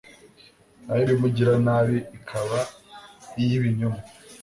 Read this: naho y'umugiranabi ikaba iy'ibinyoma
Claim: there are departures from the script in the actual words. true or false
false